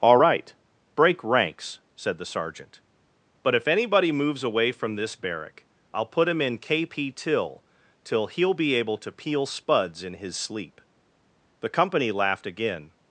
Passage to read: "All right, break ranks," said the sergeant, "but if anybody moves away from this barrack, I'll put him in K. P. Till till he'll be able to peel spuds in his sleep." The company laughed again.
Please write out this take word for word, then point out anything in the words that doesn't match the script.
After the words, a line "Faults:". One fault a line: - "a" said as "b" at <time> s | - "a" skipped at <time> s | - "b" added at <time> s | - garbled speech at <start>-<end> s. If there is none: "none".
"All right, break ranks," said the sergeant, "but if anybody moves away from this barrack, I'll put him in K. P. Till till he'll be able to peel spuds in his sleep." The company laughed again.
Faults:
none